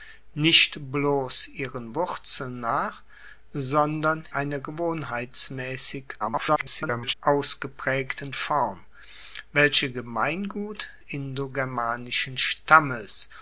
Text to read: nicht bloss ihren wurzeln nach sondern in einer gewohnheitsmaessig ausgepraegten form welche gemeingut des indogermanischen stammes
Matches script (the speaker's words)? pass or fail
fail